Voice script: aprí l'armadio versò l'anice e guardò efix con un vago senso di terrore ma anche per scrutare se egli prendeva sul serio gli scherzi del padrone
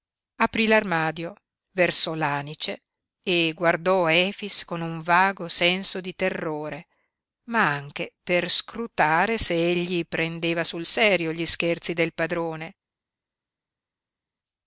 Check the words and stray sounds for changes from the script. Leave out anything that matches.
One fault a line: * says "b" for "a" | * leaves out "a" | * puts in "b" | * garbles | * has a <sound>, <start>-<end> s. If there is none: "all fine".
all fine